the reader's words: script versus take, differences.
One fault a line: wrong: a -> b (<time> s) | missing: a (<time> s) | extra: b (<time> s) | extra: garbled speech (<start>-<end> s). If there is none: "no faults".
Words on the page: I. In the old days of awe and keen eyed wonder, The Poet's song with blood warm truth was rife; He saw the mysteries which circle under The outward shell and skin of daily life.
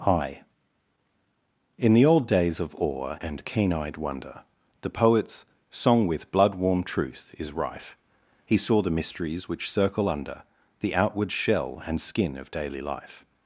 wrong: was -> is (7.4 s)